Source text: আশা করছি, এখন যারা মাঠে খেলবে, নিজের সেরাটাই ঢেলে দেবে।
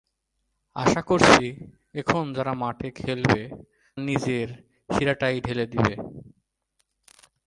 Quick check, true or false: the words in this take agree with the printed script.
true